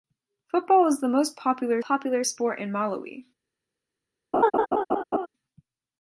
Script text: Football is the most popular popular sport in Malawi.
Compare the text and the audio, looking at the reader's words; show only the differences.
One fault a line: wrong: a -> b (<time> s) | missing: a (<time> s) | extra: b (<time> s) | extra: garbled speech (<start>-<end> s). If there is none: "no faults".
no faults